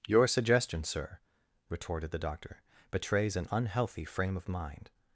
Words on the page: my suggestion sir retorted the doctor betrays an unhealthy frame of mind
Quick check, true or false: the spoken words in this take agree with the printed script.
false